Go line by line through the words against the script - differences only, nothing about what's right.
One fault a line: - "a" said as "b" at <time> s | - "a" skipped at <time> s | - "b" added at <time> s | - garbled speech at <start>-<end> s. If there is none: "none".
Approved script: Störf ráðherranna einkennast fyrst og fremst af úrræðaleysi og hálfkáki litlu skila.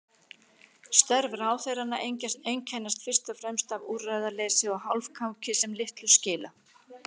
- "sem" added at 5.6 s